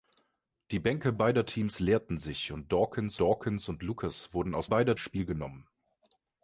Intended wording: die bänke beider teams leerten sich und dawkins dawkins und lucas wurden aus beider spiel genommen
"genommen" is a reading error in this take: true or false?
false